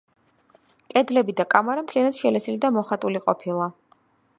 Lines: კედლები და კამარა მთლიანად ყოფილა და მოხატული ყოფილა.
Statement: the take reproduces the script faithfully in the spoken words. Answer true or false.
false